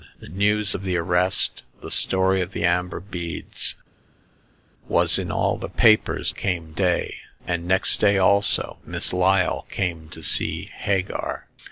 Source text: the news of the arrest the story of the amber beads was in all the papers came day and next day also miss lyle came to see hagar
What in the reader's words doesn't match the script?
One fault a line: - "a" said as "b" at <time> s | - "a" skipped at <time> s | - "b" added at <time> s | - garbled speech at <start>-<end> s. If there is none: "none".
none